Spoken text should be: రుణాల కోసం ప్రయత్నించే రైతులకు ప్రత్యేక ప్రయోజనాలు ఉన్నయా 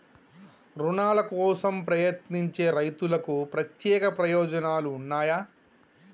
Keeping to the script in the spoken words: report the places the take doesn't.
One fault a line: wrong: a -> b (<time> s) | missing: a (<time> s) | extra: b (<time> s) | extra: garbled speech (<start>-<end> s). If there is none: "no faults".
no faults